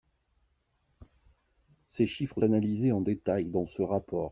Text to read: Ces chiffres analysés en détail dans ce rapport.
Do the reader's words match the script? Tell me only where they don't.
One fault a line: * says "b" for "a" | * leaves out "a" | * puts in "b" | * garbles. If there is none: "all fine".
all fine